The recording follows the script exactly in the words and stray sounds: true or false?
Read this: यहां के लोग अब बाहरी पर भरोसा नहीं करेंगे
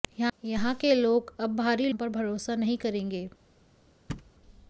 false